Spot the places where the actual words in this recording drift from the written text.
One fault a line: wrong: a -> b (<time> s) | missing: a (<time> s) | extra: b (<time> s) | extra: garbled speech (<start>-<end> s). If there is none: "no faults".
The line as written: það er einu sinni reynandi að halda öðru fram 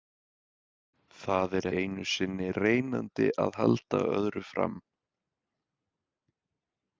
no faults